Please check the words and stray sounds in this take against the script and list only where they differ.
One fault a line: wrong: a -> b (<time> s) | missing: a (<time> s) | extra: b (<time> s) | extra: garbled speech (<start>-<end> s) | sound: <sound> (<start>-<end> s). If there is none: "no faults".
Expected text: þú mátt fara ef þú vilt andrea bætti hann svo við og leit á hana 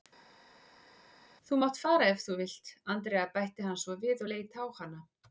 no faults